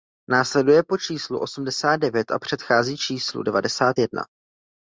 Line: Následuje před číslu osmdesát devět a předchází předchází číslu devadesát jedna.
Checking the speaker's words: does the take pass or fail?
fail